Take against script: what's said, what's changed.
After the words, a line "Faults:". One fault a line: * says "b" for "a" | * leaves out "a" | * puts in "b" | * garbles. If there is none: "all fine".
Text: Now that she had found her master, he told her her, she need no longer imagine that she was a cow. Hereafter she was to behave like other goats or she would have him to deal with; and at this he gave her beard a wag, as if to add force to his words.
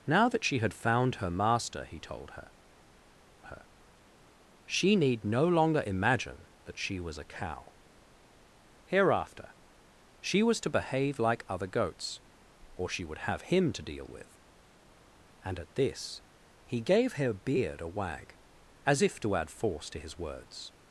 Now that she had found her master, he told her her, she need no longer imagine that she was a cow. Hereafter she was to behave like other goats or she would have him to deal with; and at this he gave her beard a wag, as if to add force to his words.
Faults:
all fine